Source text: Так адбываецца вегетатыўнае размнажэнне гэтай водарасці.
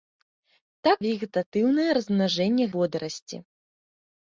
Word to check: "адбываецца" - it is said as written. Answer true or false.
false